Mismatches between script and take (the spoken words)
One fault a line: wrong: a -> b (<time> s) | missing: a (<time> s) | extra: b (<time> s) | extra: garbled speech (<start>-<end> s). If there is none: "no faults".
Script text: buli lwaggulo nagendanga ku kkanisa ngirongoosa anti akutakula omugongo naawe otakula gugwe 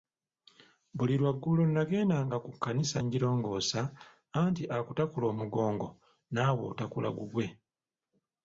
no faults